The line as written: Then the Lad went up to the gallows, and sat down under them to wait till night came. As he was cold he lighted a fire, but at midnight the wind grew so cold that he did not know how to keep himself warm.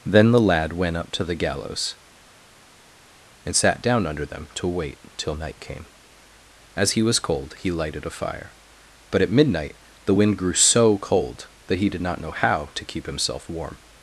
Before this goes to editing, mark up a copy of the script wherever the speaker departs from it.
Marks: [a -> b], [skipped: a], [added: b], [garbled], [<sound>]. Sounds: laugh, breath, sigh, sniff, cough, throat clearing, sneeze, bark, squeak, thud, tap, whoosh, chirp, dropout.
Then the Lad went up to the gallows, and sat down under them to wait till night came. As he was cold he lighted a fire, but at midnight the wind grew so cold that he did not know how to keep himself warm.